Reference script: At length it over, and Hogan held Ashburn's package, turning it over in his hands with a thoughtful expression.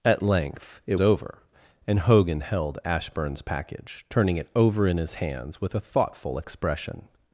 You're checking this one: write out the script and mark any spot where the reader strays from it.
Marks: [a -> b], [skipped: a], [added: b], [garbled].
At length it over, and Hogan held Ashburn's package, turning it over in his hands with a thoughtful expression.